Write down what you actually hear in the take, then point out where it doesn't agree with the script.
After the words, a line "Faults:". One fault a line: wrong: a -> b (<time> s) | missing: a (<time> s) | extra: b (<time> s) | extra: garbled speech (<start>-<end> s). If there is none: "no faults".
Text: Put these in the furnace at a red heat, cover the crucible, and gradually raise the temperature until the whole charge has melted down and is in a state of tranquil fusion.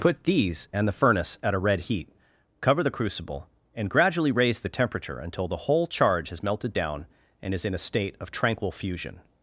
Put these and the furnace at a red heat, cover the crucible, and gradually raise the temperature until the whole charge has melted down and is in a state of tranquil fusion.
Faults:
wrong: in -> and (0.7 s)